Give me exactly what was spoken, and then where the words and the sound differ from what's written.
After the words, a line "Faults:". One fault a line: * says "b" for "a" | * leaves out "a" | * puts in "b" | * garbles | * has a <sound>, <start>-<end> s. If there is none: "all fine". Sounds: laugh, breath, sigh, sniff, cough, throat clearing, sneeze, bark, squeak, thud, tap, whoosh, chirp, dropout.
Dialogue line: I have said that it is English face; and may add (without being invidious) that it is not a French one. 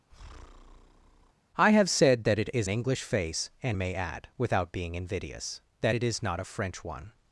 I have said that it is English face; and may add (without being invidious) that it is not a French one.
Faults:
* has a breath, 0.1-1.3 s